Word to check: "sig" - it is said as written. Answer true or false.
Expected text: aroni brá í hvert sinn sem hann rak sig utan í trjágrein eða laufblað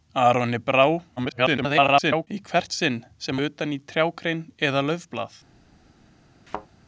false